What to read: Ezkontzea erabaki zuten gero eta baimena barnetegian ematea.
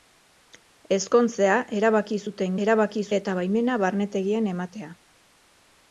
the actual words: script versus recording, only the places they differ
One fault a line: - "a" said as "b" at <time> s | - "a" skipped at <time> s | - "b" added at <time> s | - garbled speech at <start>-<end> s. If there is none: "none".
- "gero" said as "erabaki" at 2.7 s